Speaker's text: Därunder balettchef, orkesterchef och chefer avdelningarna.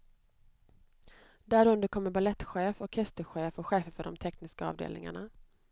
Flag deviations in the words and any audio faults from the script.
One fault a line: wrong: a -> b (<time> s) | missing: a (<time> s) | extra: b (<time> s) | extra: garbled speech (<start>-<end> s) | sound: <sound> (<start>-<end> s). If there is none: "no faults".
extra: kommer (1.9 s)
extra: för de tekniska (3.9 s)